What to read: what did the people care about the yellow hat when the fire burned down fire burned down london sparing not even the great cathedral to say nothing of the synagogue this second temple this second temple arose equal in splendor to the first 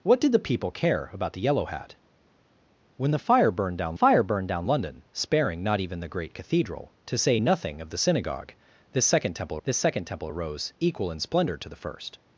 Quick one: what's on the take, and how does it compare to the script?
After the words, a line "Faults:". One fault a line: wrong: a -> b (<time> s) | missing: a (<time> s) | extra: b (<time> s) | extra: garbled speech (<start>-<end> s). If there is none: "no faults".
what did the people care about the yellow hat when the fire burned down fire burned down london sparing not even the great cathedral to say nothing of the synagogue this second temple this second temple arose equal in splendor to the first
Faults:
no faults